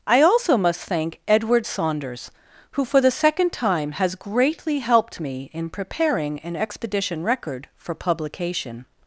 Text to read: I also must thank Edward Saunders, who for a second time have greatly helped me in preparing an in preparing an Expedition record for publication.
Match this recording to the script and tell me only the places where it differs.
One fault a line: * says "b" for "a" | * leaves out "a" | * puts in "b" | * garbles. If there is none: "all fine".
* says "the" for "a"
* says "has" for "have"
* leaves out "in preparing an"